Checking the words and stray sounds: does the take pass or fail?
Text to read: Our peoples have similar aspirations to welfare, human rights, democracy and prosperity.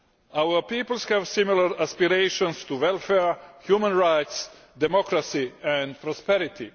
pass